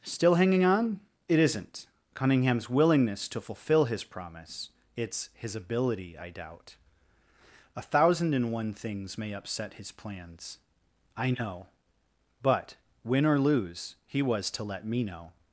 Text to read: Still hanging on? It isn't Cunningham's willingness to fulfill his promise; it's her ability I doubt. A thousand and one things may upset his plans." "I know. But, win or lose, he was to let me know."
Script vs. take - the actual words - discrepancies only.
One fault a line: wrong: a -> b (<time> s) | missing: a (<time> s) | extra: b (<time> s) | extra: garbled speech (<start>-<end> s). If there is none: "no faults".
wrong: her -> his (5.3 s)